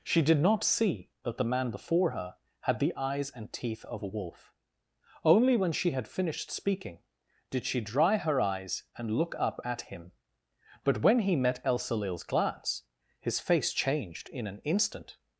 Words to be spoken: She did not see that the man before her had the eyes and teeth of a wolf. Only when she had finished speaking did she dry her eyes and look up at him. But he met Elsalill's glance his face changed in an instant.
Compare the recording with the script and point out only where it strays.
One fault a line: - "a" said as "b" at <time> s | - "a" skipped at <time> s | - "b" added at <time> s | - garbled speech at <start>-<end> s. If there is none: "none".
- "when" added at 11.0 s